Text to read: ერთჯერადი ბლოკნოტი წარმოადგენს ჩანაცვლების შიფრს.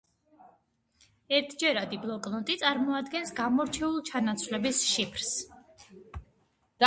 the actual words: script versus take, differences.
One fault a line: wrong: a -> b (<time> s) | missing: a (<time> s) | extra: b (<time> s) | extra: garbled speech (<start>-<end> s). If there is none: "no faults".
extra: გამორჩეულ (3.4 s)